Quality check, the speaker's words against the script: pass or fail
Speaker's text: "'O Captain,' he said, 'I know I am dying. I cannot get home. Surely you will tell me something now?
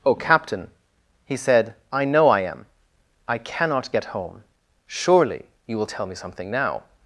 fail